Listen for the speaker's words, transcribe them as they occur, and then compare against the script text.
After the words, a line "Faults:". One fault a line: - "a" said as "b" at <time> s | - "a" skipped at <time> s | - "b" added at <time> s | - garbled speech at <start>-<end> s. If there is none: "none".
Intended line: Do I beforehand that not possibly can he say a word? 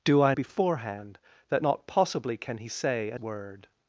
Do I beforehand that not possibly can he say a word?
Faults:
none